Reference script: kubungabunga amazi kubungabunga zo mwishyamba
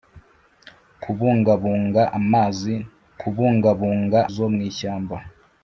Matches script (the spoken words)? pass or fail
pass